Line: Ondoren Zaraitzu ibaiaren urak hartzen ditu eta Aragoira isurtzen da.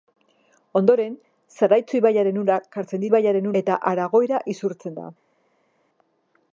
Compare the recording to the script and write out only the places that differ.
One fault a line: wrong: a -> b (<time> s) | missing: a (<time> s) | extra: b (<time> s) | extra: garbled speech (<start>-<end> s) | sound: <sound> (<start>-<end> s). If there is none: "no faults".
wrong: ditu -> ibaiaren (3.1 s)